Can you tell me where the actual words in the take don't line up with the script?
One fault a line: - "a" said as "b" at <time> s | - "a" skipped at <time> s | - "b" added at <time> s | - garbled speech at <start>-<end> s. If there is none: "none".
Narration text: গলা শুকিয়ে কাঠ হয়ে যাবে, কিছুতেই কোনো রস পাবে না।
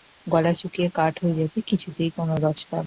none